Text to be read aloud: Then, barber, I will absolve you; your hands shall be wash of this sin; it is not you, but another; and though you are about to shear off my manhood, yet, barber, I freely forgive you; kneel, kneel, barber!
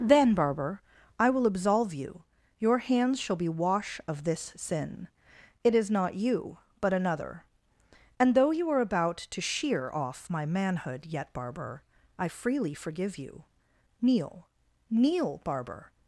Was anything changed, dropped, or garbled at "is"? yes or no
no